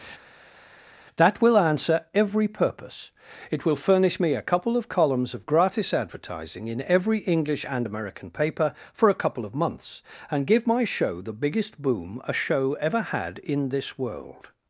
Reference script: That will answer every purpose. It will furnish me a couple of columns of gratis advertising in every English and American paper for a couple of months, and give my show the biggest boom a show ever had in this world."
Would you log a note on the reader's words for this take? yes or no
no